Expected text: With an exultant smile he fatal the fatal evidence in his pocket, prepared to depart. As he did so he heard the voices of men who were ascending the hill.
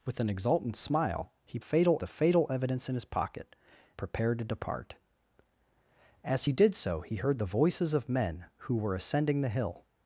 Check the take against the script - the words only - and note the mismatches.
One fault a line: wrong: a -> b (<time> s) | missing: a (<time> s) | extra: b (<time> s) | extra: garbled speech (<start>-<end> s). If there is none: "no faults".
no faults